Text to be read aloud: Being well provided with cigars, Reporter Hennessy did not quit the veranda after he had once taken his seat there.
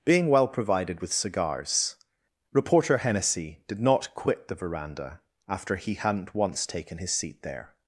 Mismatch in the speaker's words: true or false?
true